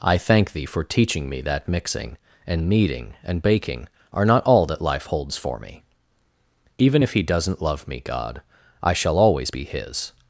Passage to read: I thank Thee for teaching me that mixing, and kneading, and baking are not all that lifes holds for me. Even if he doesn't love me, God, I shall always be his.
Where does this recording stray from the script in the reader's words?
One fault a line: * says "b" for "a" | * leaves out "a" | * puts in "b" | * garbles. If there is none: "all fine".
* says "life" for "lifes"